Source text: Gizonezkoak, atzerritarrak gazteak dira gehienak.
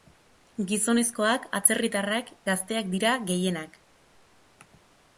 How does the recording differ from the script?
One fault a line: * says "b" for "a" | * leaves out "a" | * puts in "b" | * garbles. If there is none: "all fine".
all fine